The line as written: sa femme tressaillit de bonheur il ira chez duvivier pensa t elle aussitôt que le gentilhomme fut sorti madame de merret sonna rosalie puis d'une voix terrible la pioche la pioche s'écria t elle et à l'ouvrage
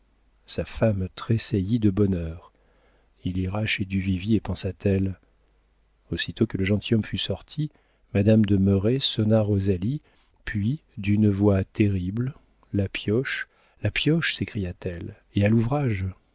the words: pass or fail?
pass